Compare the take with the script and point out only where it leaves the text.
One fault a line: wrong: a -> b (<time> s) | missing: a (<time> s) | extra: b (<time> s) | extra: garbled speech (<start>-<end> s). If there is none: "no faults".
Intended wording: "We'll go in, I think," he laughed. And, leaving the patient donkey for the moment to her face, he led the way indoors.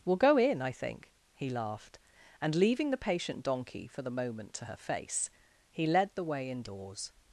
no faults